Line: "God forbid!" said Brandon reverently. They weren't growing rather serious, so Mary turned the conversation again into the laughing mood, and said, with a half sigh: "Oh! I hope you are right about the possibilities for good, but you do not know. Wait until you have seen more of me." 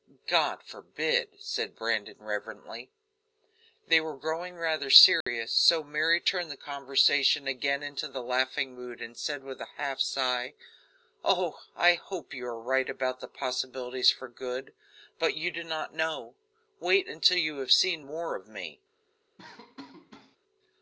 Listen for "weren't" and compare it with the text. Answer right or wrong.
wrong